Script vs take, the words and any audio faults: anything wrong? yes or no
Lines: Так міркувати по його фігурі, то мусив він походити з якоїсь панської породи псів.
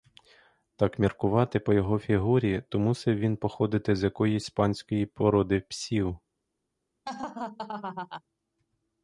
yes